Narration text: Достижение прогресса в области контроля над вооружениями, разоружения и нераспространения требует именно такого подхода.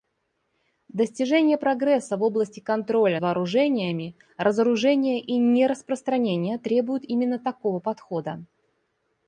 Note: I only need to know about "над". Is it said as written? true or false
false